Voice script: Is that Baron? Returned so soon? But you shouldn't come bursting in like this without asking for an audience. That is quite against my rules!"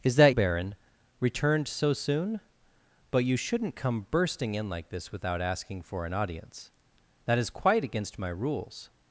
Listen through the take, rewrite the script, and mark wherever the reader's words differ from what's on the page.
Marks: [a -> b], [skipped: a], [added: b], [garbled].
Is that Baron? Returned so soon? But you shouldn't come bursting in like this without asking for an audience. That is quite against my rules!"